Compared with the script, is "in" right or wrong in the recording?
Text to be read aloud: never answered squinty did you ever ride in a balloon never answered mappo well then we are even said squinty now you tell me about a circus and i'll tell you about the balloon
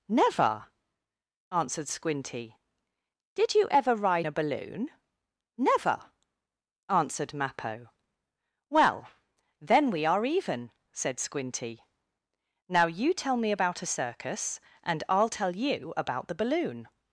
wrong